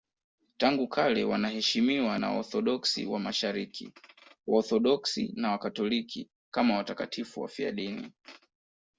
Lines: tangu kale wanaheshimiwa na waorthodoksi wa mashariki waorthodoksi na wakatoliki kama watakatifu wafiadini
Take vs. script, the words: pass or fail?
pass